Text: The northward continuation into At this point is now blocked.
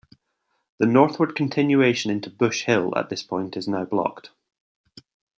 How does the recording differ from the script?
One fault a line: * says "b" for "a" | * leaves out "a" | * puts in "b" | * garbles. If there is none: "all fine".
* puts in "Bush Hill"